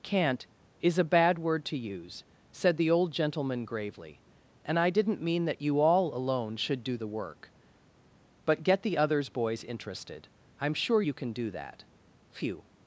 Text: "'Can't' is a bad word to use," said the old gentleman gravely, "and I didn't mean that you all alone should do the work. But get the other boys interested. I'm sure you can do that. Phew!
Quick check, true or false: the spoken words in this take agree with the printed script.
false